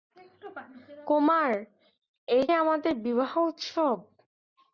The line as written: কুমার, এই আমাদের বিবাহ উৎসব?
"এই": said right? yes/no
yes